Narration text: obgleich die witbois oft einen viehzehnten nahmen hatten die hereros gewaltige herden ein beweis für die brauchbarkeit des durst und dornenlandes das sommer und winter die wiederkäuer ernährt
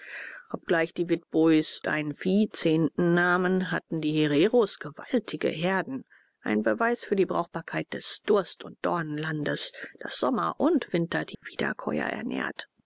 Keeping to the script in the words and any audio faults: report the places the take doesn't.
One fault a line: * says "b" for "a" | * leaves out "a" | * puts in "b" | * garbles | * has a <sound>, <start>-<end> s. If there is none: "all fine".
* leaves out "oft"
* has a dropout, 11.3-11.4 s